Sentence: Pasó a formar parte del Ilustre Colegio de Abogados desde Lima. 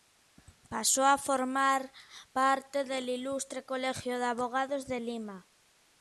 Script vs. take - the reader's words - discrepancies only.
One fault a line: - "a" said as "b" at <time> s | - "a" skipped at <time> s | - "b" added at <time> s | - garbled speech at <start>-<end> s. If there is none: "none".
- "desde" said as "de" at 4.9 s